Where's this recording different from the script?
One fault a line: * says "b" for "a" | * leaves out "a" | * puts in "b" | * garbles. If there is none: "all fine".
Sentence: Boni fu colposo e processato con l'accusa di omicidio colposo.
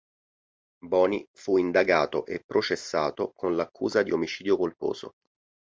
* says "indagato" for "colposo"